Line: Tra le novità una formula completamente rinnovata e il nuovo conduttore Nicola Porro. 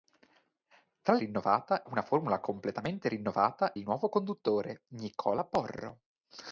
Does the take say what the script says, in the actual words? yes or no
no